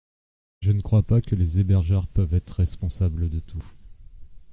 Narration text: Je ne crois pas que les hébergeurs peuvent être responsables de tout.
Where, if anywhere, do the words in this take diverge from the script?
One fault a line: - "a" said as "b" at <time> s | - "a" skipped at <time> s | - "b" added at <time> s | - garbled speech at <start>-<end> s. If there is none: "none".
none